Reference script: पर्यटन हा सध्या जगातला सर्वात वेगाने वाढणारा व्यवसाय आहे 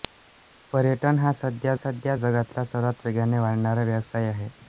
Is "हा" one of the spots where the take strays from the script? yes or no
no